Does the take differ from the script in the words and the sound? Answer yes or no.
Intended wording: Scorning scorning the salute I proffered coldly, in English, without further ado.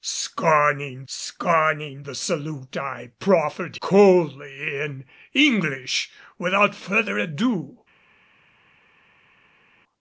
no